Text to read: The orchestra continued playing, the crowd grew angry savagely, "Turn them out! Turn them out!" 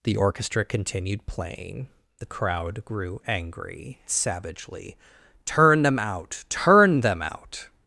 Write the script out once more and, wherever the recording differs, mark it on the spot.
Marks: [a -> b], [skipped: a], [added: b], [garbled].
The orchestra continued playing, the crowd grew angry savagely, "Turn them out! Turn them out!"